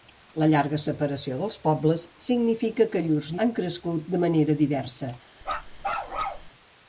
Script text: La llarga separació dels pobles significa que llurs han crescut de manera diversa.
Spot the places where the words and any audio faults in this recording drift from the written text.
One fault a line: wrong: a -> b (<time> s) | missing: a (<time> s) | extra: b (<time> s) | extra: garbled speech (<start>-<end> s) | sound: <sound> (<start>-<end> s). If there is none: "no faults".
sound: bark (5.4-6.5 s)